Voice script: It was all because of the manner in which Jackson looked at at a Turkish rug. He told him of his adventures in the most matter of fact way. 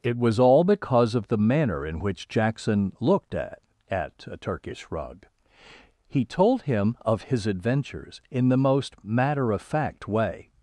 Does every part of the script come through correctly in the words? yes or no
yes